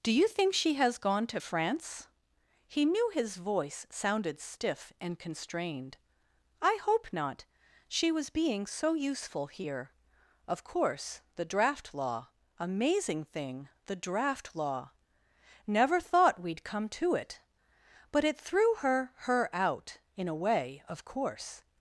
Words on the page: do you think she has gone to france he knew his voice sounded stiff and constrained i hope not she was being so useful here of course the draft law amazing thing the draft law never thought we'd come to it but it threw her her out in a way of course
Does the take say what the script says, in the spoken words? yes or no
yes